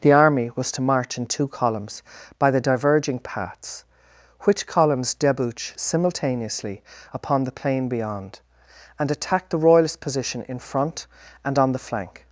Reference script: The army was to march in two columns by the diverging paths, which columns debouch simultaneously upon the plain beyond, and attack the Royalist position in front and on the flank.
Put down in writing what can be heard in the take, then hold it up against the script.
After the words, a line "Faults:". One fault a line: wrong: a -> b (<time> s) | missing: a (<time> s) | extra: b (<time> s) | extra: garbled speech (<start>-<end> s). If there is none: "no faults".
The army was to march in two columns by the diverging paths, which columns debouch simultaneously upon the plain beyond, and attack the Royalist position in front and on the flank.
Faults:
no faults